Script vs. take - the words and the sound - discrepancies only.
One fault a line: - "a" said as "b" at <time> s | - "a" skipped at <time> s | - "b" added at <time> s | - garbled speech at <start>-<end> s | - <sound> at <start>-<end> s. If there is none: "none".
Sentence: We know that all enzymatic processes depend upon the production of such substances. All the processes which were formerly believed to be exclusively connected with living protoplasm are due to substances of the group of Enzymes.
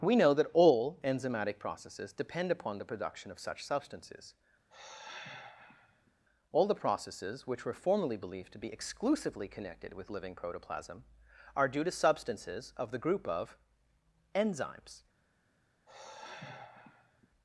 - sigh at 4.7-6.1 s
- sigh at 15.9-17.3 s